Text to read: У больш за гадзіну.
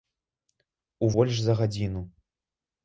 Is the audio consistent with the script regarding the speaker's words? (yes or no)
yes